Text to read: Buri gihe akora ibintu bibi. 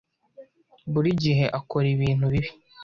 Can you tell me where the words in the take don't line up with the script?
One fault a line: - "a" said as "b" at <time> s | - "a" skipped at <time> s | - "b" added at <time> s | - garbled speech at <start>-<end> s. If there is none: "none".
none